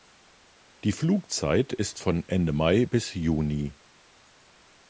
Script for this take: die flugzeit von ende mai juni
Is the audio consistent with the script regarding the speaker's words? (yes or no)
no